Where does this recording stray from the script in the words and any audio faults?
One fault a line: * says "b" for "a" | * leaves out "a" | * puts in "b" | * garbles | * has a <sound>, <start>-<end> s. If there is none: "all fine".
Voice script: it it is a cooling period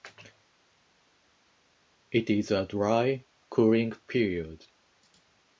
* leaves out "it"
* puts in "dry"